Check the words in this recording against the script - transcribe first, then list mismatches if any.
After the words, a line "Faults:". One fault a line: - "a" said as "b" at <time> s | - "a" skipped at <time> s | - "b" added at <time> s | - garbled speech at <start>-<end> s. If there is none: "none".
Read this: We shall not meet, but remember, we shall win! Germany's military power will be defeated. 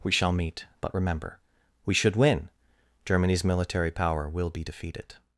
We shall meet, but remember, we should win! Germany's military power will be defeated.
Faults:
- "not" skipped at 0.3 s
- "shall" said as "should" at 1.9 s